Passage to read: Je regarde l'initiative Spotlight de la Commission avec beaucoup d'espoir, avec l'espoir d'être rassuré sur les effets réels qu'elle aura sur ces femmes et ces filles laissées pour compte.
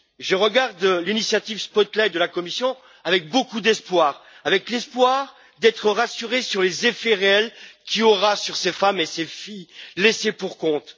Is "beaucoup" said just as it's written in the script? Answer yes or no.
yes